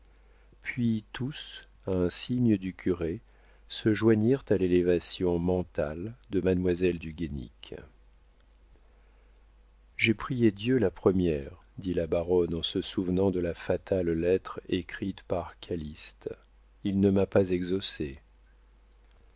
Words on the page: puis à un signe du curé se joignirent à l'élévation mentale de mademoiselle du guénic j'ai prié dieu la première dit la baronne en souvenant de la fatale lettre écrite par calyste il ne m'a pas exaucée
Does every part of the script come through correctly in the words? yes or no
no